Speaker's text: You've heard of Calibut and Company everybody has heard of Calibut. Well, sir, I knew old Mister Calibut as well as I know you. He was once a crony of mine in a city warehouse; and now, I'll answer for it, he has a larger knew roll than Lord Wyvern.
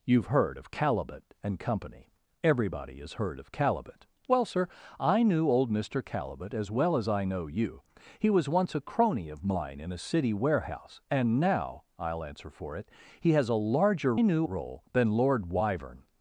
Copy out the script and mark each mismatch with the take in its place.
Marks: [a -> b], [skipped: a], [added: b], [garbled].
You've heard of Calibut and Company everybody has heard of Calibut. Well, sir, I knew old Mister Calibut as well as I know you. He was once a crony of mine in a city warehouse; and now, I'll answer for it, he has a larger knew roll than Lord Wyvern.